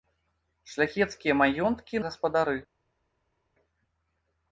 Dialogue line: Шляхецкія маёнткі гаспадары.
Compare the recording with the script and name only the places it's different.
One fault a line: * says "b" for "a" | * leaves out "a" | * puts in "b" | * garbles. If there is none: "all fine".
all fine